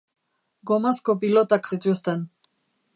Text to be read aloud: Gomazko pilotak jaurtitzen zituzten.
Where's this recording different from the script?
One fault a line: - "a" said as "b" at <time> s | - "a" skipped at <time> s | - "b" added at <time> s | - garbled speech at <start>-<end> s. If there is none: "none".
- "jaurtitzen" skipped at 1.7 s